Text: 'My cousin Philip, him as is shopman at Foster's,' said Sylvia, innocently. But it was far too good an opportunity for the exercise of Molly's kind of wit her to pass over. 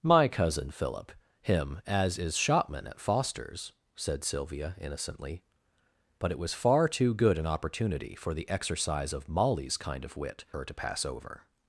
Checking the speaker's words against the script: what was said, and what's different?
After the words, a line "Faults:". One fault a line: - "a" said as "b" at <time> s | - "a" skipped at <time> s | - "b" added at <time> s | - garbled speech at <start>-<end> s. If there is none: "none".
'My cousin Philip, him as is shopman at Foster's,' said Sylvia, innocently. But it was far too good an opportunity for the exercise of Molly's kind of wit her to pass over.
Faults:
none